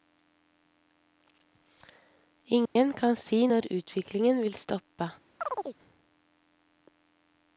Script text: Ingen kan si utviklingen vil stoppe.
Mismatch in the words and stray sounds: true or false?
true